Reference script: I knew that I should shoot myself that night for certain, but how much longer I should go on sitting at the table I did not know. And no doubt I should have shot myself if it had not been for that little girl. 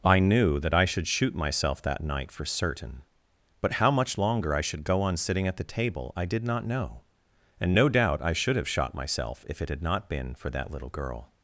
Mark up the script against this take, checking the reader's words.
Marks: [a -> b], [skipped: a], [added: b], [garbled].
I knew that I should shoot myself that night for certain, but how much longer I should go on sitting at the table I did not know. And no doubt I should have shot myself if it had not been for that little girl.